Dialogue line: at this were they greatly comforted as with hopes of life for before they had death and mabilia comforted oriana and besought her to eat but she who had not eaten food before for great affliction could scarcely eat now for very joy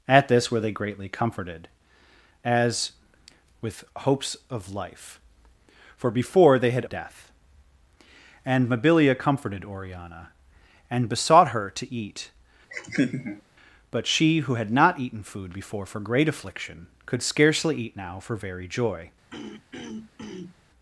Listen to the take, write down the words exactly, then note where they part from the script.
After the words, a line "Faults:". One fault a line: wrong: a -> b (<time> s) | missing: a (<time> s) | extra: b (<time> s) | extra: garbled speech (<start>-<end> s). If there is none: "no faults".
at this were they greatly comforted as with hopes of life for before they had death and mabilia comforted oriana and besought her to eat but she who had not eaten food before for great affliction could scarcely eat now for very joy
Faults:
no faults